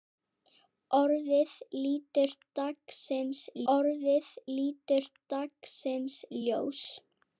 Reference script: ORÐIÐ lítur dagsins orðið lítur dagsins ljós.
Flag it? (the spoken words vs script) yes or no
no